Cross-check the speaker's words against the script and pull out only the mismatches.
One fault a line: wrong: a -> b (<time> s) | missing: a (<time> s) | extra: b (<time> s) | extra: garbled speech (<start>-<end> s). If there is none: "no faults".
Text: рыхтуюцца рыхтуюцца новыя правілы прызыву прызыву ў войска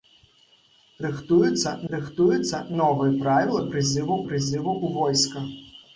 no faults